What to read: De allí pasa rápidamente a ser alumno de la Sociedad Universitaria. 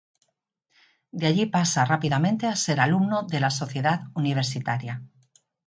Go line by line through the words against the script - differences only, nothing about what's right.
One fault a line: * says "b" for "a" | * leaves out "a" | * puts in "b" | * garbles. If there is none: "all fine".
all fine